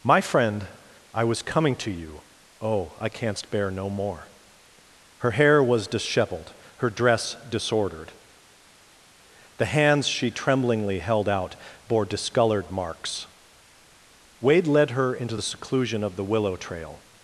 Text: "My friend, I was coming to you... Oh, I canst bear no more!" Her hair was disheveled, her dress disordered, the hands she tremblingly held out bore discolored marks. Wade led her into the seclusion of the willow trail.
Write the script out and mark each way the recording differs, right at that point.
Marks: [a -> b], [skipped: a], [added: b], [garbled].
"My friend, I was coming to you... Oh, I canst bear no more!" Her hair was disheveled, her dress disordered, the hands she tremblingly held out bore discolored marks. Wade led her into the seclusion of the willow trail.